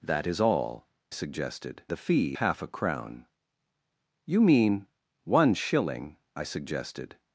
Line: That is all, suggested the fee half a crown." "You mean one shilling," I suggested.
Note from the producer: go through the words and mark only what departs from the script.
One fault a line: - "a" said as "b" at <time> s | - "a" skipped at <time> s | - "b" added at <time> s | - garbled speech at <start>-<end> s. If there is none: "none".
none